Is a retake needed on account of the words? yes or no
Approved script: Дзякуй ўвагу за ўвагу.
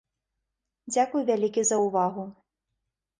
yes